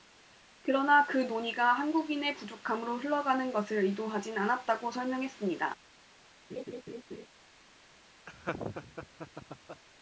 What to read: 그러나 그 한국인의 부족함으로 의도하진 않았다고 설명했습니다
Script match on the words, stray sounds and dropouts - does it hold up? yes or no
no